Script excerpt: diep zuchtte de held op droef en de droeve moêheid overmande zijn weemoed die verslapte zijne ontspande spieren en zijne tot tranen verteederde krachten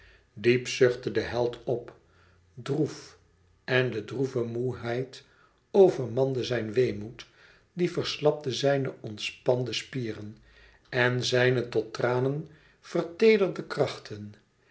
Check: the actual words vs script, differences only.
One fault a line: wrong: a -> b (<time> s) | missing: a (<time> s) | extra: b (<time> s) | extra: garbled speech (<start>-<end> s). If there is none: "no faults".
no faults